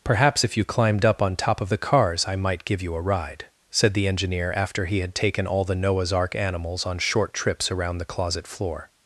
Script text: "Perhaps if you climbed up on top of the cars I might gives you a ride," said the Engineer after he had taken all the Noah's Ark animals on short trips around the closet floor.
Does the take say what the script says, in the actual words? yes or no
no